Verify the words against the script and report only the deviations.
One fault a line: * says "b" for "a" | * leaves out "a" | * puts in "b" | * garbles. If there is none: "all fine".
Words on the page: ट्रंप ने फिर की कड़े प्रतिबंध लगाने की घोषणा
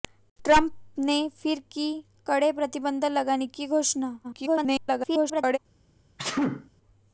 * garbles